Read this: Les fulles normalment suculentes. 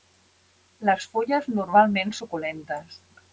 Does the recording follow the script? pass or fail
pass